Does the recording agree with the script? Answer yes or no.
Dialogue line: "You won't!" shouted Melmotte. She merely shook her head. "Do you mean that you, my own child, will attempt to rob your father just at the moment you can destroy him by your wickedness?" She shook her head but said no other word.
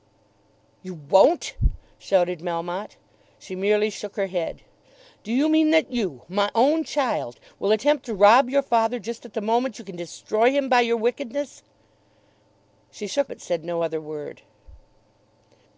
no